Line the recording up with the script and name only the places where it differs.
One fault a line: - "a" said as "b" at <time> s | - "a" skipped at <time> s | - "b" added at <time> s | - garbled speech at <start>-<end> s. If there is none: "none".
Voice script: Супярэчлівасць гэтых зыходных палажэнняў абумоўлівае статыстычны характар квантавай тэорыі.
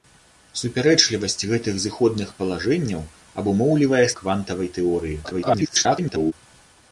- "статыстычны характар" skipped at 4.0 s
- garbled speech at 5.2-6.3 s